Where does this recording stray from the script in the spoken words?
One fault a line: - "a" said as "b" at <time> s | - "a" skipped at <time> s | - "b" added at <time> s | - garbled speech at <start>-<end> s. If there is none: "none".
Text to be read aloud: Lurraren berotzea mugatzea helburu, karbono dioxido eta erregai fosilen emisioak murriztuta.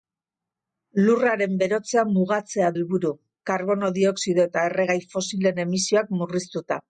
none